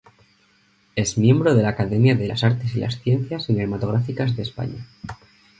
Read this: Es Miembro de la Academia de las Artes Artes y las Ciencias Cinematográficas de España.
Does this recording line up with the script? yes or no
no